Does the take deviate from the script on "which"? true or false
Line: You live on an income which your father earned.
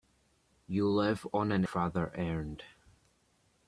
true